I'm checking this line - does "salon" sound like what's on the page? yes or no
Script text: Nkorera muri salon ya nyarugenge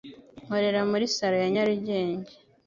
yes